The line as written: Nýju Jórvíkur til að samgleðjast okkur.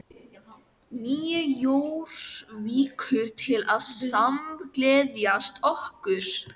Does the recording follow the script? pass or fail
pass